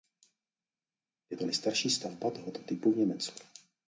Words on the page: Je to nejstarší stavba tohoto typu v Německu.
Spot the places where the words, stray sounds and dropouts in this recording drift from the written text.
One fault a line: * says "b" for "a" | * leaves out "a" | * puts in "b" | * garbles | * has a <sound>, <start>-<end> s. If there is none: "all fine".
all fine